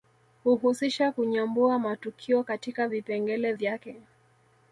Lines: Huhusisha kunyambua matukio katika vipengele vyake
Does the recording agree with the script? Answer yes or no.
yes